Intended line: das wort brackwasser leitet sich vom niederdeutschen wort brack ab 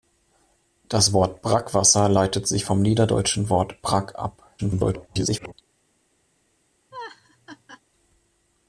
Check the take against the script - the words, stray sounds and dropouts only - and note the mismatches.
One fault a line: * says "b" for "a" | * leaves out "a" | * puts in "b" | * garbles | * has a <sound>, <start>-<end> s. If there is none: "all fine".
* garbles
* has a laugh, 6.9-7.8 s